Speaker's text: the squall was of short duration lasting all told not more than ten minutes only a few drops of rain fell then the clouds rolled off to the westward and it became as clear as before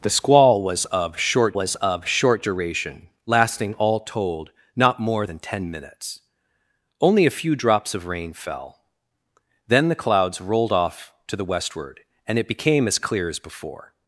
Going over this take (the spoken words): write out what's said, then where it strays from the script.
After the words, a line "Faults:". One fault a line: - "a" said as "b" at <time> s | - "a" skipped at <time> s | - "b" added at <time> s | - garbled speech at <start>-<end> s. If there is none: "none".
the squall was of short was of short duration lasting all told not more than ten minutes only a few drops of rain fell then the clouds rolled off to the westward and it became as clear as before
Faults:
- "was of short" added at 1.5 s